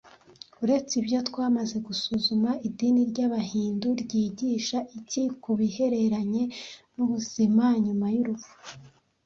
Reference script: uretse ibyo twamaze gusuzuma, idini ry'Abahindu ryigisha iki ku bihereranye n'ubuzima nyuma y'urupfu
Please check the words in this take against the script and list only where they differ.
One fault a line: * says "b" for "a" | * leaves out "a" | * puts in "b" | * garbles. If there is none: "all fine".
all fine